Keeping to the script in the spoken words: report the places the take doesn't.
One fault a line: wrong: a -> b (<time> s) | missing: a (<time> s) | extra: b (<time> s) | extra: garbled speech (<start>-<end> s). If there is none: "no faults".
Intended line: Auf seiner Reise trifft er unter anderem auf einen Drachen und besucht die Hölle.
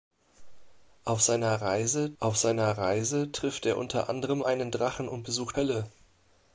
extra: auf seiner Reise (2.2 s)
missing: auf (4.4 s)
missing: die (5.6 s)